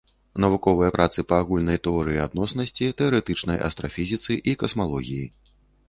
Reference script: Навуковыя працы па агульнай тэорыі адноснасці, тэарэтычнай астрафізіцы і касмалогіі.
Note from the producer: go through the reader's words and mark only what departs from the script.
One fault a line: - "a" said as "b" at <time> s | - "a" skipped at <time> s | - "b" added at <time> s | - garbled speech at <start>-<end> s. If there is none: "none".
none